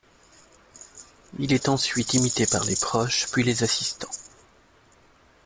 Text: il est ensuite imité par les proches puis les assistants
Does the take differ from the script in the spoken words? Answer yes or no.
no